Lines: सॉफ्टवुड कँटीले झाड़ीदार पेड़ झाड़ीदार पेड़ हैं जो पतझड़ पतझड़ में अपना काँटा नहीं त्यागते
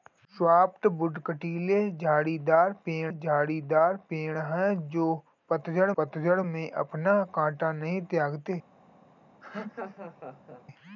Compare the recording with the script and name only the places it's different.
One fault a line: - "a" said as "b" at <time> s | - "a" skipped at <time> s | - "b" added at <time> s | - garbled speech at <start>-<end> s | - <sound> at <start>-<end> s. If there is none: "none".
- laugh at 9.4-10.6 s